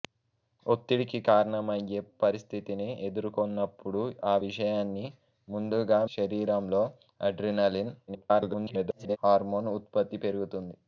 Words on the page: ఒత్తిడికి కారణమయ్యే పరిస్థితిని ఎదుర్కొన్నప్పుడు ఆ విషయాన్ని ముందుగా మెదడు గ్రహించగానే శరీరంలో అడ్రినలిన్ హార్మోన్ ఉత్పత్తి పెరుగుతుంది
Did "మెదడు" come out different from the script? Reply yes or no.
yes